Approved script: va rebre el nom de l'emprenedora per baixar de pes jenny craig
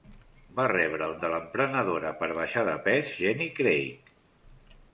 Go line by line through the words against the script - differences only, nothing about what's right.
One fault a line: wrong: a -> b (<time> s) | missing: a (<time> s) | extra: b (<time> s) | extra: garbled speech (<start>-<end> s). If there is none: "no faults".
missing: nom (1.1 s)